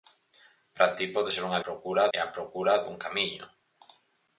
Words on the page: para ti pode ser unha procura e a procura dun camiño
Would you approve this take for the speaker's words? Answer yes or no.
yes